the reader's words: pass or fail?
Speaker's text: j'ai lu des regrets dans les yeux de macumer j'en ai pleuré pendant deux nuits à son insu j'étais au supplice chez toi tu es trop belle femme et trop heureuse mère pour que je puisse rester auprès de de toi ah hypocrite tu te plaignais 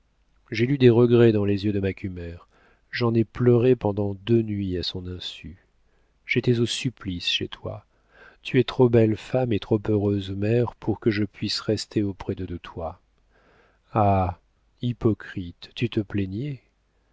pass